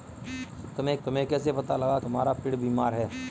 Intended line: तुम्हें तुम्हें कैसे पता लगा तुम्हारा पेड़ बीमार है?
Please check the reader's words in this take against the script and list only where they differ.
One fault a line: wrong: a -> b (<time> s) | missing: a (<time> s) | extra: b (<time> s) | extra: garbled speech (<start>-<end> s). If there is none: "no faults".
no faults